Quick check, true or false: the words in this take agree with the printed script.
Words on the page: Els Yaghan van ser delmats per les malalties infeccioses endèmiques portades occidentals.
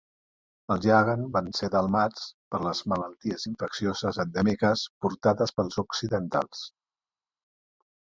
false